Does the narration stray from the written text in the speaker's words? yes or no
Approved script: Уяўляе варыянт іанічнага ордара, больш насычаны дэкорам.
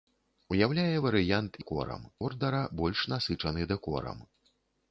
yes